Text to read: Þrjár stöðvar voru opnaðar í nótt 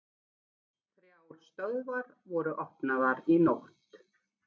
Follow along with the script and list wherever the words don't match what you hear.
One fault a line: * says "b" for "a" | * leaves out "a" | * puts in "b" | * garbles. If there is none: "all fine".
all fine